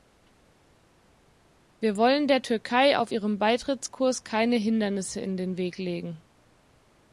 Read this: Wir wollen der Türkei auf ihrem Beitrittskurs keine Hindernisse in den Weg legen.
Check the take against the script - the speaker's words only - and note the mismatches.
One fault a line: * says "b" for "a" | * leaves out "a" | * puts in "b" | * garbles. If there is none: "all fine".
all fine